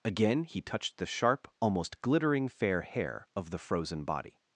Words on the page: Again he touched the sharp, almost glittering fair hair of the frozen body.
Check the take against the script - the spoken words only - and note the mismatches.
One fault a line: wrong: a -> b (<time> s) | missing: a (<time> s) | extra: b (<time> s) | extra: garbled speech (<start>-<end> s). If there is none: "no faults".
no faults